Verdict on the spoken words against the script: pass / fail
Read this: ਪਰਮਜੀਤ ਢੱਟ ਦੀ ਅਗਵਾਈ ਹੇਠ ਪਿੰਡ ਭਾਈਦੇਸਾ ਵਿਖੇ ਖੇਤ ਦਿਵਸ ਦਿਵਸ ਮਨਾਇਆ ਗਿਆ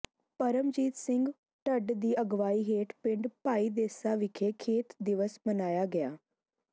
fail